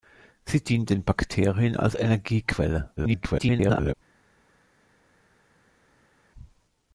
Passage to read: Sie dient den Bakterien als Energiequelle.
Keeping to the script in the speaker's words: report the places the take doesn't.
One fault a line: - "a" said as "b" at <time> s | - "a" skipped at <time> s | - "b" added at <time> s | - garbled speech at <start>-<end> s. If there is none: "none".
- garbled speech at 3.0-3.9 s